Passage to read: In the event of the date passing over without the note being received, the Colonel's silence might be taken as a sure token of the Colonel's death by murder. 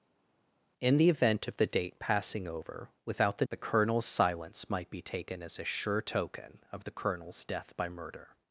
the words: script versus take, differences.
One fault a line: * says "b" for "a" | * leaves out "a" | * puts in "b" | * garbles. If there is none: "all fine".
* leaves out "note being received"